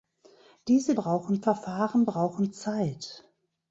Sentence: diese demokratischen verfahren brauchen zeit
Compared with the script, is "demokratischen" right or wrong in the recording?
wrong